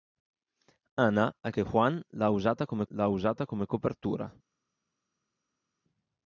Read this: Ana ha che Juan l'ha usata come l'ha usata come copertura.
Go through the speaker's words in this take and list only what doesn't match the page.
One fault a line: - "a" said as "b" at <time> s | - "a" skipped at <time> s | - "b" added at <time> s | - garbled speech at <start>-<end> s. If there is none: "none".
none